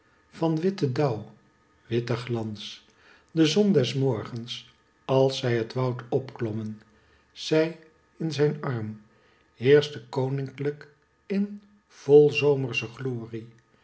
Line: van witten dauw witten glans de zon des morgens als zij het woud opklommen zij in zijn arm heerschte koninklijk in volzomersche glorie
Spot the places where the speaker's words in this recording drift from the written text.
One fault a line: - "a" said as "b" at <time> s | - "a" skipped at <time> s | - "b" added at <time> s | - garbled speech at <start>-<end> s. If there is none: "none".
none